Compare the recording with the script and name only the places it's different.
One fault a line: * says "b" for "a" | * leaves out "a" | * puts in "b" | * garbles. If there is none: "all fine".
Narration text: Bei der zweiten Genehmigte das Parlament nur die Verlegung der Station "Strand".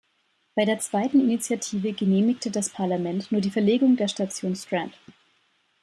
* puts in "Initiative"